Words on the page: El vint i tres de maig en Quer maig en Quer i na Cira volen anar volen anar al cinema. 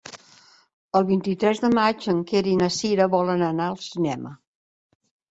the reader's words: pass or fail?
fail